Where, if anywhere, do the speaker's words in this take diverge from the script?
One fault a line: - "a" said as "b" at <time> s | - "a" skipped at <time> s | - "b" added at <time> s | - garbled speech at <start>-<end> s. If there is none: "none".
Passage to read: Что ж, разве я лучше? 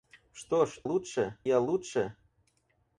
- "разве" said as "лучше" at 0.8 s